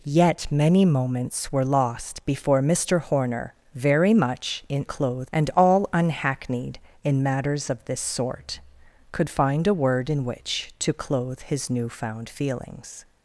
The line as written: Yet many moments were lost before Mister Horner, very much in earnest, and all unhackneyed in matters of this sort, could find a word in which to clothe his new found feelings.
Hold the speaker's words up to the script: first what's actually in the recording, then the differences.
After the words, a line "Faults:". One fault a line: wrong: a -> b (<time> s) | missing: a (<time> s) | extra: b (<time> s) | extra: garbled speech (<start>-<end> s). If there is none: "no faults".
Yet many moments were lost before Mister Horner, very much in clothe, and all unhackneyed in matters of this sort, could find a word in which to clothe his new found feelings.
Faults:
wrong: earnest -> clothe (4.8 s)